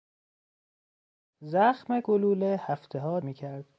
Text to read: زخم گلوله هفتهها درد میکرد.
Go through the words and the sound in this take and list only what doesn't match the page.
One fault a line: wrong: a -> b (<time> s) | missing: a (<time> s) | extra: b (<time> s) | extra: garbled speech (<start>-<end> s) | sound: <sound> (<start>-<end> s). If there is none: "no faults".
missing: درد (3.2 s)